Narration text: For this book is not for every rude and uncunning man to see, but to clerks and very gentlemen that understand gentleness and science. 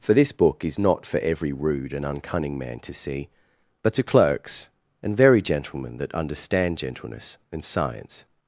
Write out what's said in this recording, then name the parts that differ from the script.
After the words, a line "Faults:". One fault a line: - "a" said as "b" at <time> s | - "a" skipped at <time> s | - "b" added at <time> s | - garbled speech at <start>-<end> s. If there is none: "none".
For this book is not for every rude and uncunning man to see, but to clerks and very gentlemen that understand gentleness and science.
Faults:
none